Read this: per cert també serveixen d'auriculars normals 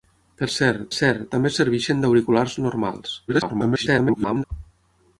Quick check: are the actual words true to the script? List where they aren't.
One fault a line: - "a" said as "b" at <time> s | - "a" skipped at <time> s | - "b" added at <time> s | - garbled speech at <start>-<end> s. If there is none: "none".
- "cert" added at 0.9 s
- garbled speech at 3.3-4.4 s